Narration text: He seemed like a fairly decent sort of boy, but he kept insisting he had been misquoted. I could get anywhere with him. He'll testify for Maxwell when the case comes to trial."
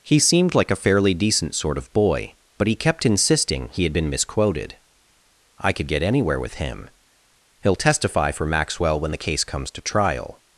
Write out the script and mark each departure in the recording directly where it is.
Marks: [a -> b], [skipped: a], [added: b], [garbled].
He seemed like a fairly decent sort of boy, but he kept insisting he had been misquoted. I could get anywhere with him. He'll testify for Maxwell when the case comes to trial."